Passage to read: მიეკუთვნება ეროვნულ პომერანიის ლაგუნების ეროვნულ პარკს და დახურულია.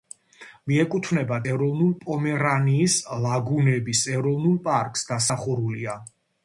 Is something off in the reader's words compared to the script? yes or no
no